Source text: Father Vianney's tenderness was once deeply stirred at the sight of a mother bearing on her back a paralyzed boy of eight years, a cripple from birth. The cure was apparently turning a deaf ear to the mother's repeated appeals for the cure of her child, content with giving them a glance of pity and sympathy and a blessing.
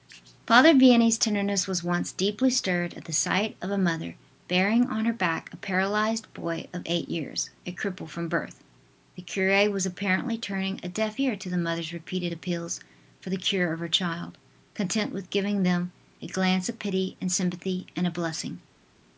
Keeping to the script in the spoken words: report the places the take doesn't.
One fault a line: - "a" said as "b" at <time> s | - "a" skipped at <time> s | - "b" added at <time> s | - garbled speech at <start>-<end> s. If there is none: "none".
none